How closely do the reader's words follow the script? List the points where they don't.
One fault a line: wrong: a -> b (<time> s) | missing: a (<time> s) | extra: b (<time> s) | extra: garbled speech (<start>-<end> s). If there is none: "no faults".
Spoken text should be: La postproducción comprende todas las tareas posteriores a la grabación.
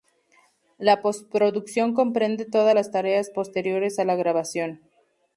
no faults